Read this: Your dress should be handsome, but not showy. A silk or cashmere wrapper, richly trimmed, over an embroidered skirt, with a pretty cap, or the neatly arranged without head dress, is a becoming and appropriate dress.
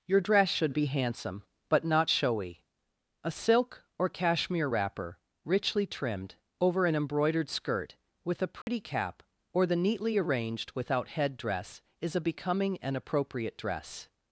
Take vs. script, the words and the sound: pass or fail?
fail